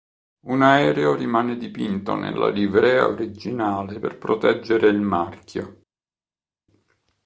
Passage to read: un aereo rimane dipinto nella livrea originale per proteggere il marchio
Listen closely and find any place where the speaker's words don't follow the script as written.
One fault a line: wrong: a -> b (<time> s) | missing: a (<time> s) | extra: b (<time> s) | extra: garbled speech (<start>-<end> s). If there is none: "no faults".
no faults